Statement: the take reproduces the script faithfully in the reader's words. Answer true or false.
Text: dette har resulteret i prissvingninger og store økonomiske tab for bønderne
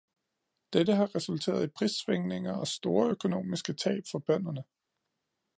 true